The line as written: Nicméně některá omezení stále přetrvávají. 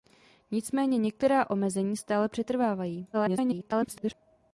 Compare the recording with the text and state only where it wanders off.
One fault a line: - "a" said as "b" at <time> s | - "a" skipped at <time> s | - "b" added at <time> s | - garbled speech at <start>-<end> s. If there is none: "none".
- garbled speech at 3.1-4.1 s